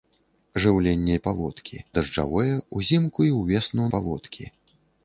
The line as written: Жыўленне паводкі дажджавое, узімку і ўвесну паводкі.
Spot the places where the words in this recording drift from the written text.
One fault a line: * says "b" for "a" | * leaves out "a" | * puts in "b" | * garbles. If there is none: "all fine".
all fine